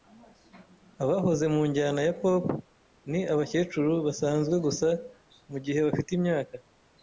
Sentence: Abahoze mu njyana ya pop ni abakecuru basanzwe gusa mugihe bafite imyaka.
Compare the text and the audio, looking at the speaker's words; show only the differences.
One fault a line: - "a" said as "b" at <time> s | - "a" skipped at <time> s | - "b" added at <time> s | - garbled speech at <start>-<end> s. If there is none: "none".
none